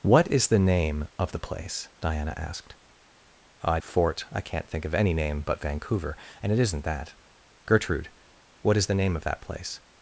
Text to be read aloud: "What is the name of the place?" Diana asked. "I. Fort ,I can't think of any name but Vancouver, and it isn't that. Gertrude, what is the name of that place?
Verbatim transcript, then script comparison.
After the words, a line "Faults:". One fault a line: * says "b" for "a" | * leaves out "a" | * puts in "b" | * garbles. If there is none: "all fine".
"What is the name of the place?" Diana asked. "I. Fort ,I can't think of any name but Vancouver, and it isn't that. Gertrude, what is the name of that place?
Faults:
all fine